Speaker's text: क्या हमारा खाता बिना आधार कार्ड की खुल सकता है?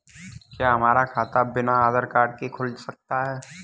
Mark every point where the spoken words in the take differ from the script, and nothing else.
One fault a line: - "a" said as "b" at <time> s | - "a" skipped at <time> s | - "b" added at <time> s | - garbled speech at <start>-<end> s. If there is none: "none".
- "की" said as "के" at 2.3 s